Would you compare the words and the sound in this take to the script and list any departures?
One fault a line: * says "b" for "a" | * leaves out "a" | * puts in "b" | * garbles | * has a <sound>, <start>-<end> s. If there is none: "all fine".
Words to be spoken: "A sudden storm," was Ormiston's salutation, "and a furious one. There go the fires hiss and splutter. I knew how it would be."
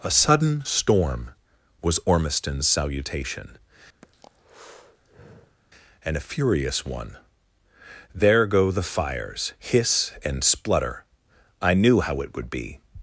* has a breath, 4.0-5.6 s